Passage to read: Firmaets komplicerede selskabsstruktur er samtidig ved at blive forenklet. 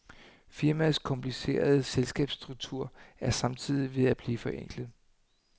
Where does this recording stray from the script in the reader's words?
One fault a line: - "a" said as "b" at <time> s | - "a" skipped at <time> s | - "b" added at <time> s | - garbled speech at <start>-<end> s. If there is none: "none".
none